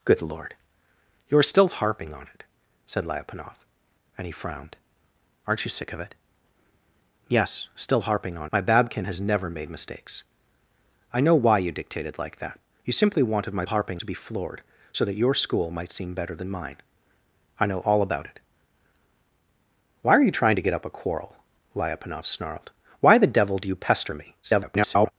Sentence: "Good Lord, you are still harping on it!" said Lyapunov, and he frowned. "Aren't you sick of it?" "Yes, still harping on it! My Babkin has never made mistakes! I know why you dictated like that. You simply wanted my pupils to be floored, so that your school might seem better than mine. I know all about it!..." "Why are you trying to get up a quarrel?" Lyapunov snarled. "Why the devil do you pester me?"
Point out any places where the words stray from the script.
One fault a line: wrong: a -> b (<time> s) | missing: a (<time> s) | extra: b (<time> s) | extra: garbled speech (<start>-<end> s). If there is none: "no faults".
missing: it (8.5 s)
wrong: pupils -> harping (13.7 s)
extra: garbled speech (24.4-25.1 s)